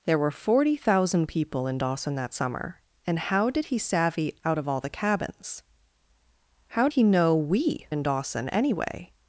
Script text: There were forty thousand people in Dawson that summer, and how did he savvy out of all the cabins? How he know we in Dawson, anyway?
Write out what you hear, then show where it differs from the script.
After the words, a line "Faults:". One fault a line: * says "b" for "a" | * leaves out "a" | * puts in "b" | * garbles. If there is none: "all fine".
There were forty thousand people in Dawson that summer, and how did he savvy out of all the cabins? How he know we in Dawson, anyway?
Faults:
all fine